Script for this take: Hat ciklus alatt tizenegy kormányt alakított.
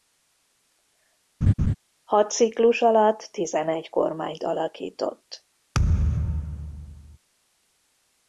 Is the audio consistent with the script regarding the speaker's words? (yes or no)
yes